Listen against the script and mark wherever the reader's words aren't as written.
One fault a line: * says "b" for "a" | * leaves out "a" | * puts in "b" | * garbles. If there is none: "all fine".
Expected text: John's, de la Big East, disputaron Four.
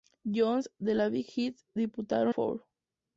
all fine